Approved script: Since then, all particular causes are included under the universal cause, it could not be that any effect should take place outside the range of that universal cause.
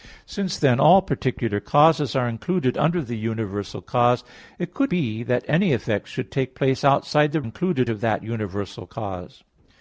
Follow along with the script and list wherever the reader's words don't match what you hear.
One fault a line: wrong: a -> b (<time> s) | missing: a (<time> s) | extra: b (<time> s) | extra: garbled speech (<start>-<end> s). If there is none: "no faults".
missing: not (4.9 s)
wrong: range -> included (7.4 s)